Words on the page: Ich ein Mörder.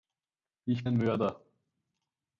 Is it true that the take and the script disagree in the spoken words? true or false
false